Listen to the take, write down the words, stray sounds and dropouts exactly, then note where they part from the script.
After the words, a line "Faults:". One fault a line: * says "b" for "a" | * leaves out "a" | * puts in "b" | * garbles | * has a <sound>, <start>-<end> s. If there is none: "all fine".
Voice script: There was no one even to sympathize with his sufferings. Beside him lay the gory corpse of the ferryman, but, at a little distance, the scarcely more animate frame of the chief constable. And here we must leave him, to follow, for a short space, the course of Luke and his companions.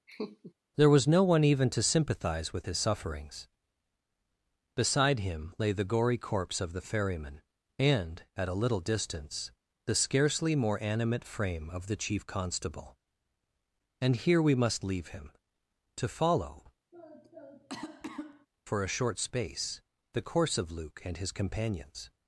There was no one even to sympathize with his sufferings. Beside him lay the gory corpse of the ferryman, and, at a little distance, the scarcely more animate frame of the chief constable. And here we must leave him, to follow, for a short space, the course of Luke and his companions.
Faults:
* has a laugh, 0.1-0.5 s
* says "and" for "but"
* has a cough, 16.9-18.5 s